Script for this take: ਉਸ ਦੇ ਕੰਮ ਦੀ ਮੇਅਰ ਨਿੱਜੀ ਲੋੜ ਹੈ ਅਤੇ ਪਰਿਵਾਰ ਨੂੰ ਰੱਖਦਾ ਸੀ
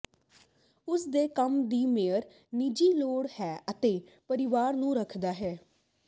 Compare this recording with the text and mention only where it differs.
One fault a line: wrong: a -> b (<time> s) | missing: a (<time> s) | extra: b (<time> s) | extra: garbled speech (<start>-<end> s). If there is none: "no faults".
wrong: ਸੀ -> ਹੈ (5.3 s)